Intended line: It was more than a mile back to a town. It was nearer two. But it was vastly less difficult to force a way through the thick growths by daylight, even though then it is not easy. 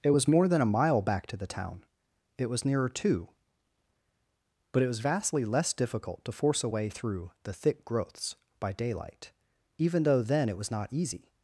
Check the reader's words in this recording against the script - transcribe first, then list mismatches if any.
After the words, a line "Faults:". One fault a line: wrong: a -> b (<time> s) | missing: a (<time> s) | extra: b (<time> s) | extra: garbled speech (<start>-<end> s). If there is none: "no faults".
It was more than a mile back to the town. It was nearer two. But it was vastly less difficult to force a way through the thick growths by daylight, even though then it was not easy.
Faults:
wrong: a -> the (1.4 s)
wrong: is -> was (10.6 s)